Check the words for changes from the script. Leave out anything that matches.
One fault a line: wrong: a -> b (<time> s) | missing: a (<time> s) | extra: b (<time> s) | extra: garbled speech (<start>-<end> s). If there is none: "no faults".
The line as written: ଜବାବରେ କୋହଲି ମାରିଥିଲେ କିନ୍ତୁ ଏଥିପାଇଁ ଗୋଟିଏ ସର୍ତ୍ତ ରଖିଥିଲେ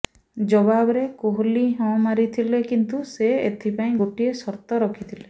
extra: ହଁ (1.8 s)
extra: ସେ (3.1 s)